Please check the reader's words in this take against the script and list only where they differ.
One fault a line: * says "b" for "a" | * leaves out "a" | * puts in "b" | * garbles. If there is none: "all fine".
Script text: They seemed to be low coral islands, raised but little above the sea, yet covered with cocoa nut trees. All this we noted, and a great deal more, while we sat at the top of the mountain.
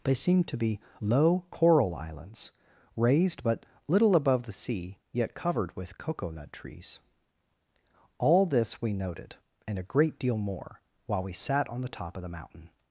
* says "on" for "at"